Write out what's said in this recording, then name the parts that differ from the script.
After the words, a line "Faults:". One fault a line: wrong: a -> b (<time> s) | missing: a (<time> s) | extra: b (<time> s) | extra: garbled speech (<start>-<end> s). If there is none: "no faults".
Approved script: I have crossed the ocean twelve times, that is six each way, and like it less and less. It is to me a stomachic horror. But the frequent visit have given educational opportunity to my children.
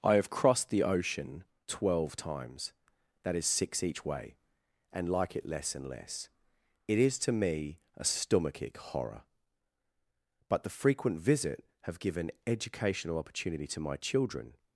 I have crossed the ocean twelve times, that is six each way, and like it less and less. It is to me a stomachic horror. But the frequent visit have given educational opportunity to my children.
Faults:
no faults